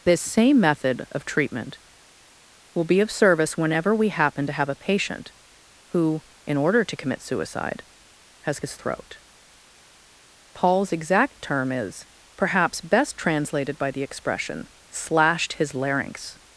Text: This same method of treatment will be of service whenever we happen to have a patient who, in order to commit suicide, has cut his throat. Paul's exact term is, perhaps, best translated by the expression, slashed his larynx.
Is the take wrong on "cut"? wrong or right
wrong